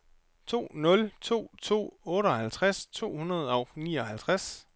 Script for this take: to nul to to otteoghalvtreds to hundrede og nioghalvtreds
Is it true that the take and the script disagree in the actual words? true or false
false